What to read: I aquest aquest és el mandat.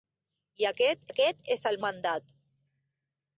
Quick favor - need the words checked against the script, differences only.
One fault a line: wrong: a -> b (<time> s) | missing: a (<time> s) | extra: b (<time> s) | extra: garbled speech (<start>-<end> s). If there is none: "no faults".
no faults